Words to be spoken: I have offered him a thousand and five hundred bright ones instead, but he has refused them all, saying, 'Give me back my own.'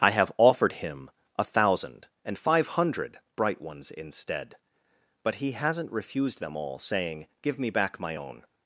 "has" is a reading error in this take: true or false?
true